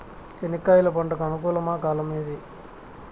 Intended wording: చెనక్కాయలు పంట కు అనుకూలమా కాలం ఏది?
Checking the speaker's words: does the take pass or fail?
pass